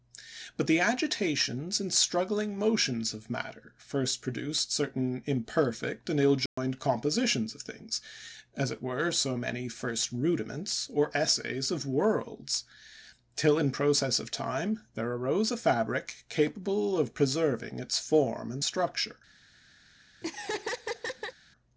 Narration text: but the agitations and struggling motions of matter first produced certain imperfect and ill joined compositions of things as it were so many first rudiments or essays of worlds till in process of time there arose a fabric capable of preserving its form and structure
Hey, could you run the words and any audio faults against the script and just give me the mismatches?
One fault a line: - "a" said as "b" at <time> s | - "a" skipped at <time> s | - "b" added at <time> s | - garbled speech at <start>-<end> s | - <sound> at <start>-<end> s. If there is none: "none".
- dropout at 6.5-6.6 s
- laugh at 20.2-21.3 s